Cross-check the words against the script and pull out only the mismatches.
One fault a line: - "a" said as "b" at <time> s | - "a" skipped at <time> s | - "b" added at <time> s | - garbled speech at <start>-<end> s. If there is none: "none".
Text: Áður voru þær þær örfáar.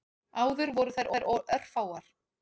none